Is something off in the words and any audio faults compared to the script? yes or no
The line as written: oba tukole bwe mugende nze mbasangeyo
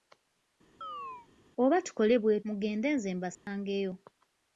yes